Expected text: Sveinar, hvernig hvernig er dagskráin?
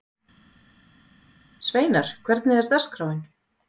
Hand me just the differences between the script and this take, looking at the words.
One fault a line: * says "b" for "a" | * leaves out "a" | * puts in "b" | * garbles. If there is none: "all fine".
* leaves out "hvernig"